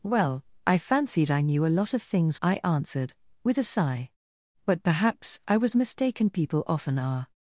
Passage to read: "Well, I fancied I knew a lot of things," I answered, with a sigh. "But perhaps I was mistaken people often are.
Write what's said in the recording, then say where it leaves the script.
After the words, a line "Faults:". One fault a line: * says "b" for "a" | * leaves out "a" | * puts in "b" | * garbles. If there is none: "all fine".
"Well, I fancied I knew a lot of things," I answered, with a sigh. "But perhaps I was mistaken people often are.
Faults:
all fine